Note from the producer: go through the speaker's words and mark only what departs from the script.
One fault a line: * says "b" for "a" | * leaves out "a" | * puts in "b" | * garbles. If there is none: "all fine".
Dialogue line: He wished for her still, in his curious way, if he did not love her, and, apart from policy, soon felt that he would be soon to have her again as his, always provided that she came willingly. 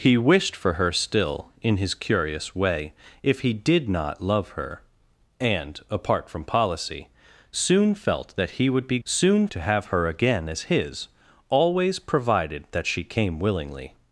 all fine